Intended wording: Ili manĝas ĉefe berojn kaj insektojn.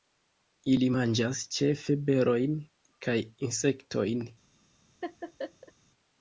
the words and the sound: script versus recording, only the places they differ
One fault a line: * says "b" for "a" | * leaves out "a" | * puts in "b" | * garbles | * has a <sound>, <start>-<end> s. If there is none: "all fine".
* has a laugh, 5.0-5.7 s